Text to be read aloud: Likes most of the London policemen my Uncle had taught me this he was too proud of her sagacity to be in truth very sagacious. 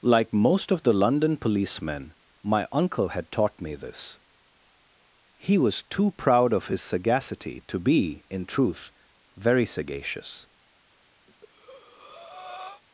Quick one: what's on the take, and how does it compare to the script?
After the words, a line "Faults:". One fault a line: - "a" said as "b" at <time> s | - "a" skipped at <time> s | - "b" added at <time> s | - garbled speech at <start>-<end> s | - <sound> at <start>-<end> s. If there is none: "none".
Like most of the London policemen my Uncle had taught me this he was too proud of his sagacity to be in truth very sagacious.
Faults:
- "Likes" said as "Like" at 0.0 s
- "her" said as "his" at 6.7 s
- breath at 11.3-12.8 s